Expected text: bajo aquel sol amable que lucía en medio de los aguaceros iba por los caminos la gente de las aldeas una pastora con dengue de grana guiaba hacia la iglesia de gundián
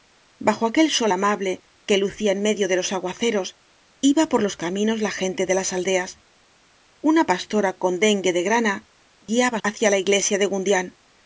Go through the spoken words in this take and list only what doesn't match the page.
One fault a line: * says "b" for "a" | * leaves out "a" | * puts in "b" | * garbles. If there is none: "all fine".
all fine